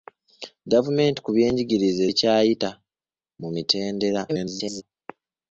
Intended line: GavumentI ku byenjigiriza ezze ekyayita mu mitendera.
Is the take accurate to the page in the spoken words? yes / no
no